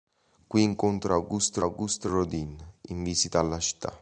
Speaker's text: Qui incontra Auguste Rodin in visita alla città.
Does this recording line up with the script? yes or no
no